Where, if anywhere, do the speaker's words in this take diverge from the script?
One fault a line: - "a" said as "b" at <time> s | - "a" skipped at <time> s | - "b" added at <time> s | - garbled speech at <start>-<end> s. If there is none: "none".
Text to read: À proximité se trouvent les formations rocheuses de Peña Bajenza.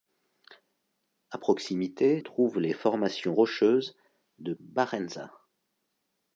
- "se" skipped at 2.2 s
- "Peña" skipped at 4.5 s